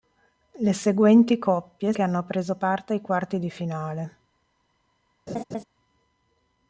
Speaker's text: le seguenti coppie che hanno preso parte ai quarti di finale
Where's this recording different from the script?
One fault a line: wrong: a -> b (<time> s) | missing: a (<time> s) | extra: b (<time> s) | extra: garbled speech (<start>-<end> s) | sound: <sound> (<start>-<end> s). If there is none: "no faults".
sound: laugh (5.3-5.6 s)